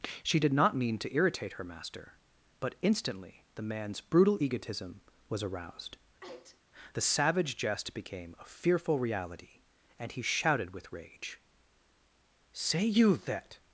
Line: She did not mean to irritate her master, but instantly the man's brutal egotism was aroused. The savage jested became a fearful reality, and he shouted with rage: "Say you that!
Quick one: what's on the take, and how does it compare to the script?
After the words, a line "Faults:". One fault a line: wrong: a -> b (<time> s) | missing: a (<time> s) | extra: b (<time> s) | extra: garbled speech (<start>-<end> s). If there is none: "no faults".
She did not mean to irritate her master, but instantly the man's brutal egotism was aroused. The savage jest became a fearful reality, and he shouted with rage: "Say you that!
Faults:
wrong: jested -> jest (7.6 s)